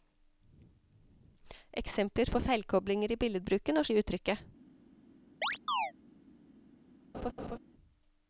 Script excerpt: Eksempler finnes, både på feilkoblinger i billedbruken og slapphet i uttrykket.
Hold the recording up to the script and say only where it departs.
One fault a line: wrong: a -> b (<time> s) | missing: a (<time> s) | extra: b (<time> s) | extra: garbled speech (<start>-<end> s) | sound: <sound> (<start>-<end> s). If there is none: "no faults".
missing: finnes både (2.3 s)
missing: slapphet (3.9 s)
sound: chirp (5.4-5.9 s)
sound: laugh (7.1-7.6 s)